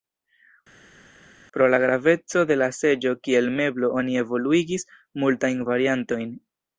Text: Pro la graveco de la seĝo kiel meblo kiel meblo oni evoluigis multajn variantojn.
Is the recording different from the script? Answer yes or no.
yes